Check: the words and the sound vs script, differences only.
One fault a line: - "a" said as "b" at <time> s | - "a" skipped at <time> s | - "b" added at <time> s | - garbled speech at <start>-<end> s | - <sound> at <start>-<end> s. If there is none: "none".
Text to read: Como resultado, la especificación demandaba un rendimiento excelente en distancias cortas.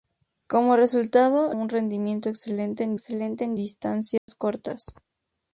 - "la especificación demandaba un rendimiento" said as "un rendimiento excelente en" at 1.5 s
- dropout at 4.2-4.3 s